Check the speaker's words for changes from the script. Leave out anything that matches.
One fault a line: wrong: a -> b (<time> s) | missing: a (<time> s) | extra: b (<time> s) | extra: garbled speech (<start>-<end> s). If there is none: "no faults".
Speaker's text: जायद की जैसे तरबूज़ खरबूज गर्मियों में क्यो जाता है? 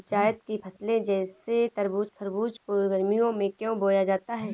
extra: फसले (0.6 s)
extra: को (2.6 s)
extra: बोया (3.8 s)